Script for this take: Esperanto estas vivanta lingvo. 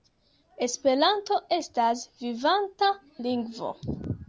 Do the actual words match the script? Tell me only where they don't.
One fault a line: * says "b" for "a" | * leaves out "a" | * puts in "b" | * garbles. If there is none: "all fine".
all fine